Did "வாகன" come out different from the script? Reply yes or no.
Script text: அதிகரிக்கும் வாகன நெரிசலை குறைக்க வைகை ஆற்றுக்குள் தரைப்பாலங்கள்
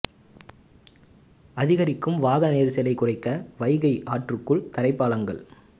no